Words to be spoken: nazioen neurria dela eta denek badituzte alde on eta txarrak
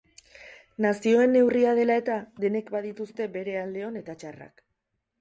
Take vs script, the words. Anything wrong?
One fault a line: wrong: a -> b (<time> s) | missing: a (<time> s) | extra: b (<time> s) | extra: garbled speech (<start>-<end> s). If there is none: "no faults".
extra: bere (3.4 s)